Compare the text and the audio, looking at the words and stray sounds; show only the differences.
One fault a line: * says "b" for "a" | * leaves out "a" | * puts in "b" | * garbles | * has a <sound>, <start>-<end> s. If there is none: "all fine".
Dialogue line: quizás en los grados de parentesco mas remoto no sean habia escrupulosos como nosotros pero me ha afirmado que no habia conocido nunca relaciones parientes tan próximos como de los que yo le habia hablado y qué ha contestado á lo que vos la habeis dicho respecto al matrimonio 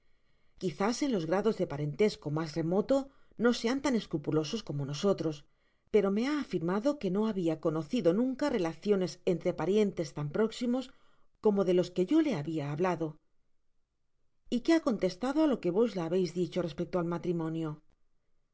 * says "tan" for "habia"
* puts in "entre"